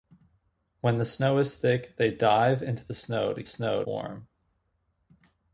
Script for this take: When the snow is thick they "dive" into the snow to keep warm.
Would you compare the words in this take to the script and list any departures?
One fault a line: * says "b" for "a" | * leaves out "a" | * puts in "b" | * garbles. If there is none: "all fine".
* says "snow" for "keep"